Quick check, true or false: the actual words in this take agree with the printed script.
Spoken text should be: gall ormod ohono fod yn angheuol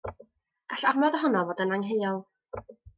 true